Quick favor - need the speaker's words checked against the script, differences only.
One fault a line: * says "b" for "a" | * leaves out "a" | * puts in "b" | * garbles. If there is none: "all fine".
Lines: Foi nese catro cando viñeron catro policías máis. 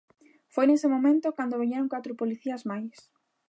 * says "momento" for "catro"